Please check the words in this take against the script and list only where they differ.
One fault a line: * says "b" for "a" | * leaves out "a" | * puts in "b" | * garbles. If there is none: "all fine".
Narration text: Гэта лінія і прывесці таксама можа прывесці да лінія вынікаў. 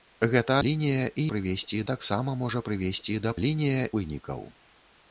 all fine